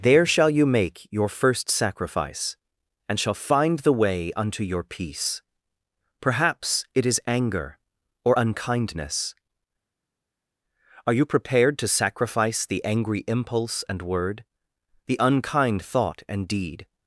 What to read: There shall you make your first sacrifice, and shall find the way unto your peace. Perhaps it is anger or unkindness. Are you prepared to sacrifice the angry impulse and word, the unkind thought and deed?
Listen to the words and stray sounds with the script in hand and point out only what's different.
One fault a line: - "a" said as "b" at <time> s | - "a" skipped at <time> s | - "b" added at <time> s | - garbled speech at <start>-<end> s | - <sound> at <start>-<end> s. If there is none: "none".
none